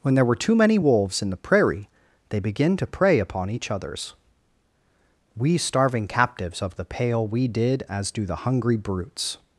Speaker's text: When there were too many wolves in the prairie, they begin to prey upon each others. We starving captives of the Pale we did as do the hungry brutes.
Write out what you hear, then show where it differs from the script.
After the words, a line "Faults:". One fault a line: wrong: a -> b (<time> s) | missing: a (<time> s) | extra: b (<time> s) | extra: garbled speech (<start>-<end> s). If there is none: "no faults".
When there were too many wolves in the prairie, they begin to prey upon each others. We starving captives of the Pale we did as do the hungry brutes.
Faults:
no faults